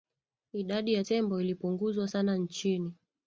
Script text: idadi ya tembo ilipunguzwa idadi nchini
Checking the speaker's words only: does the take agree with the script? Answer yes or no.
no